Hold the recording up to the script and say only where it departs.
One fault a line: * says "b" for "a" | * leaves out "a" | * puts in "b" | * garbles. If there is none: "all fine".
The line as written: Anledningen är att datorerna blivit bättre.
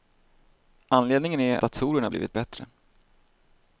* leaves out "att"